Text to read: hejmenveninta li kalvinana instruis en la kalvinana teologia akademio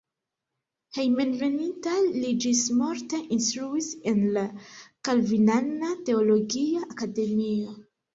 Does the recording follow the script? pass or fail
fail